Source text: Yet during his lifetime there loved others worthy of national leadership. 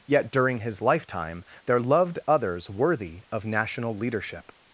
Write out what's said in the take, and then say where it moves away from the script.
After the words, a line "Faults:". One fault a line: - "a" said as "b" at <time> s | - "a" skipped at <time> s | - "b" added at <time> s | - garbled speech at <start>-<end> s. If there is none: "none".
Yet during his lifetime there loved others worthy of national leadership.
Faults:
none